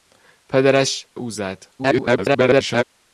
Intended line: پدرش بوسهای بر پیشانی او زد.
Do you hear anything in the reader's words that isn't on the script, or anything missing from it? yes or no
yes